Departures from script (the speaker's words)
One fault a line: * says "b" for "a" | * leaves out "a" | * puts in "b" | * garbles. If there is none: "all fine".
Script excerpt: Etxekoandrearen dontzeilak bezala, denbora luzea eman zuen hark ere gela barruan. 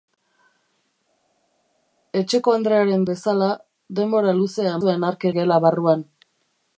* leaves out "dontzeilak"
* leaves out "eman"
* leaves out "ere"